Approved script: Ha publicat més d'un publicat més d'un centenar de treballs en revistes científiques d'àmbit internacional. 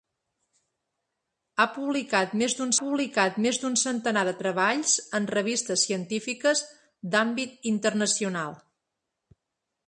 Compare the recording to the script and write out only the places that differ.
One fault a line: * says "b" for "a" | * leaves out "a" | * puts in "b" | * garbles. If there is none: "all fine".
all fine